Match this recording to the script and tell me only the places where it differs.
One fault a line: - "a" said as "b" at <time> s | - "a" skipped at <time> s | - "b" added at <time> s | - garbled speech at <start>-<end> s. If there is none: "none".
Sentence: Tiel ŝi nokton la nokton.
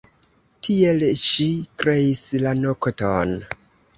- "nokton" said as "kreis" at 1.8 s